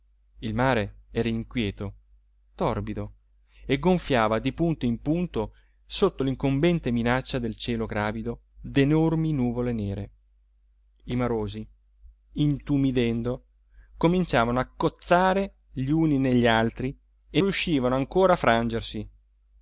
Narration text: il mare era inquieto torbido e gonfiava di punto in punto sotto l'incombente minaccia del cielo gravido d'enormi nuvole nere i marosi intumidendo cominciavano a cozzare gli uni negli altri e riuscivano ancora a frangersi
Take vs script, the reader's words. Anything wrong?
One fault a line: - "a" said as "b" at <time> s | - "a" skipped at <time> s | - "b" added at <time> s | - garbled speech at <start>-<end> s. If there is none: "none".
none